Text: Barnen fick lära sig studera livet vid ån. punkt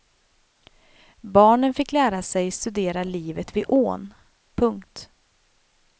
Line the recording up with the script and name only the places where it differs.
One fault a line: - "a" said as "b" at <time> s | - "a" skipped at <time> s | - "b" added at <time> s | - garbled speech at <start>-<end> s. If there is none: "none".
none